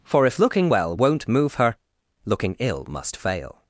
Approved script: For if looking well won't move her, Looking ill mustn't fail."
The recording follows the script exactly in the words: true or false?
false